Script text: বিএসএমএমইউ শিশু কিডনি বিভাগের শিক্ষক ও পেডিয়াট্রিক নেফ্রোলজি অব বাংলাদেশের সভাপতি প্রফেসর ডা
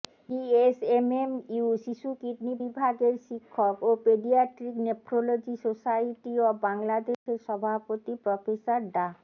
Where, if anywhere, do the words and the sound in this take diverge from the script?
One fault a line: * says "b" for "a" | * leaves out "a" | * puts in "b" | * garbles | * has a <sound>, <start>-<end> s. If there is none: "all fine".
* puts in "সোসাইটি"
* has a dropout, 7.1-7.3 s